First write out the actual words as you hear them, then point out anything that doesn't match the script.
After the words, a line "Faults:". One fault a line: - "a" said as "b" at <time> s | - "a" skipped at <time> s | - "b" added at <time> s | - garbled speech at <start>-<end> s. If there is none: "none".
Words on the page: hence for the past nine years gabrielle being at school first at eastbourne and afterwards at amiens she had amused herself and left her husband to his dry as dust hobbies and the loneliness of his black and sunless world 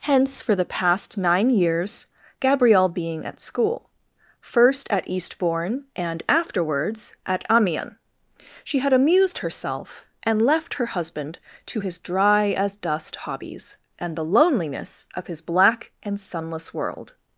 hence for the past nine years gabrielle being at school first at eastbourne and afterwards at amiens she had amused herself and left her husband to his dry as dust hobbies and the loneliness of his black and sunless world
Faults:
none